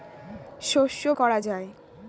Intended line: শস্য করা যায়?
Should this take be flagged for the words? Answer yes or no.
no